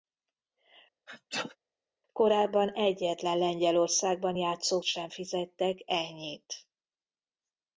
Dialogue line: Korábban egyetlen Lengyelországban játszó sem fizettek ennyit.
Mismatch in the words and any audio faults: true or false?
true